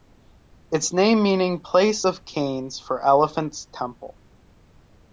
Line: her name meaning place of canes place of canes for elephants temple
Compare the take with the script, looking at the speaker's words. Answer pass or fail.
fail